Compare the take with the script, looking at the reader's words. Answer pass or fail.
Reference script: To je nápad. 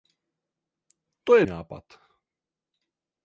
pass